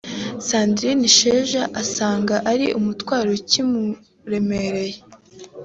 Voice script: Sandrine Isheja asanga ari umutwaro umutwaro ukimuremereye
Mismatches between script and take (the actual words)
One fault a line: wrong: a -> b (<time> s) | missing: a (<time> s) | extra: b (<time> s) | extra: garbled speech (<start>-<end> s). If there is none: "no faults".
missing: umutwaro (3.3 s)